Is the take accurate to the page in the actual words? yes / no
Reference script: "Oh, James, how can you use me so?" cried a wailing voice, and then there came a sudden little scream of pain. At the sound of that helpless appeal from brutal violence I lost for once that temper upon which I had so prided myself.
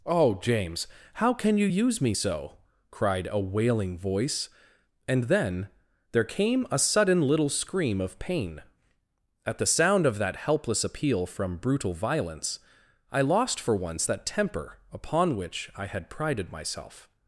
no